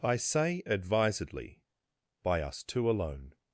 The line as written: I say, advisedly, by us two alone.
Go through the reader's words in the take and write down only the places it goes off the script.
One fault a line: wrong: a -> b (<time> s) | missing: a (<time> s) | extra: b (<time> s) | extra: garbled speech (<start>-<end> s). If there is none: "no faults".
no faults